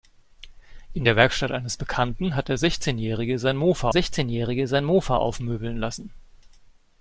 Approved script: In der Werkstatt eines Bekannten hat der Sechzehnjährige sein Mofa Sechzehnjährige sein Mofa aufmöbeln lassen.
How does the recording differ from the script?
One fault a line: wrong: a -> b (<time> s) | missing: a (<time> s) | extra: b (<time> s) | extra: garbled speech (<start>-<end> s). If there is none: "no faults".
no faults